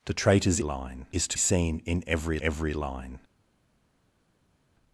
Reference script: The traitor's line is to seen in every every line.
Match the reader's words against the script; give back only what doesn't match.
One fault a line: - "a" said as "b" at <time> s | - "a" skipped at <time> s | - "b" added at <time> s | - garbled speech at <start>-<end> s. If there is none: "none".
none